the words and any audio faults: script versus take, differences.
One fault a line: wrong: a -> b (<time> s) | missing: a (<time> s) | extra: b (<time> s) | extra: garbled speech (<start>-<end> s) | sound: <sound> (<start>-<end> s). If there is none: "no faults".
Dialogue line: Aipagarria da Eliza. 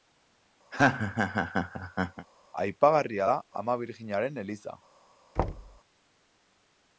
sound: laugh (0.7-2.3 s)
extra: Ama Birjinaren (3.6 s)
sound: thud (5.4-5.8 s)